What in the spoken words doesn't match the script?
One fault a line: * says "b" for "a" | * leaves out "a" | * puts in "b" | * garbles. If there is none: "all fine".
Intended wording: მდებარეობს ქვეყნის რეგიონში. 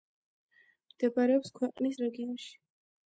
all fine